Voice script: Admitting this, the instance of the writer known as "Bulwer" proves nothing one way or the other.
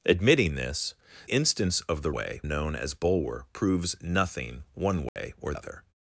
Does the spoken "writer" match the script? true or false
false